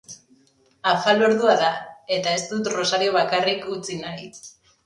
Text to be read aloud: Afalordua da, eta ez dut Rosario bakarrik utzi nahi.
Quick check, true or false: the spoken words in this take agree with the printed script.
true